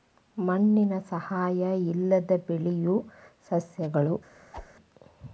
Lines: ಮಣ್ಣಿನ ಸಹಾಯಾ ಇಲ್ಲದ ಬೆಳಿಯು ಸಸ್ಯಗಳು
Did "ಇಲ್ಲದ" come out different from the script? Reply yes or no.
no